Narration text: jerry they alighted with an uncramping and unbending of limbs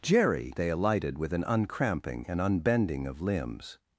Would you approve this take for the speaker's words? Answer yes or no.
yes